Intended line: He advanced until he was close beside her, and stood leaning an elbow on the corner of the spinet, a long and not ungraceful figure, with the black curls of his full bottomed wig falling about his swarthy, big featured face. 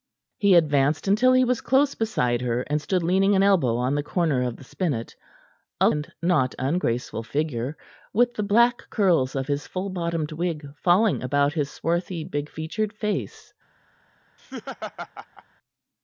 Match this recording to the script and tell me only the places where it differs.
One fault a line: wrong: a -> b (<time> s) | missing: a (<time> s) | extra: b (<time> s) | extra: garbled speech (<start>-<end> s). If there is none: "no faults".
missing: long (5.9 s)